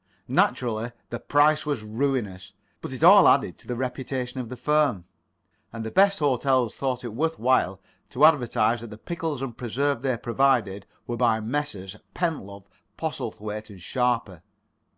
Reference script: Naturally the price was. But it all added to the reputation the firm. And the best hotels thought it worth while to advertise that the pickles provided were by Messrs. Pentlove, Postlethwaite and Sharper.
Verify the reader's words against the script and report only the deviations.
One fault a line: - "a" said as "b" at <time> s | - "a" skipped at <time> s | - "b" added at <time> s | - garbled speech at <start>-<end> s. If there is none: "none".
- "ruinous" added at 1.8 s
- "of" added at 4.4 s
- "and preserves they" added at 9.4 s